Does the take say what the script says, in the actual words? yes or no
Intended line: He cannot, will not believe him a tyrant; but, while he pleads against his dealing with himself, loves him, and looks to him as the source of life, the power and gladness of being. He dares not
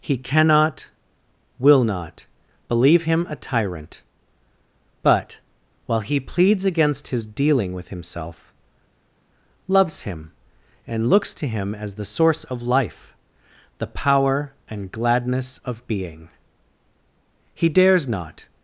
yes